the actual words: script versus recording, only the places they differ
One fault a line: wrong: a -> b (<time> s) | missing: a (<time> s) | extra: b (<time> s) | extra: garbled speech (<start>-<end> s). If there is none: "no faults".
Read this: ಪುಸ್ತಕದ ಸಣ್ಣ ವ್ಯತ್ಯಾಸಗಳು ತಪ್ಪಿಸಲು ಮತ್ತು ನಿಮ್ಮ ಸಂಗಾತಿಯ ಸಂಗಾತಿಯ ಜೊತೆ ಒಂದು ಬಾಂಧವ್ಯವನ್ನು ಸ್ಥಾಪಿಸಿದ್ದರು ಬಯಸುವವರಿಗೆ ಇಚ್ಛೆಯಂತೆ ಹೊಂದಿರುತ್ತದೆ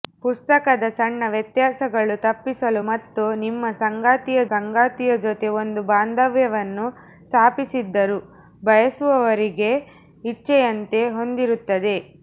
no faults